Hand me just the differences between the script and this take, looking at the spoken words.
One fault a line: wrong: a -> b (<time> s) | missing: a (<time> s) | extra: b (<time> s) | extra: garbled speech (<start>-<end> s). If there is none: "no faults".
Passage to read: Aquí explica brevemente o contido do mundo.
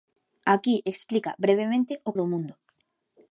missing: contido (2.1 s)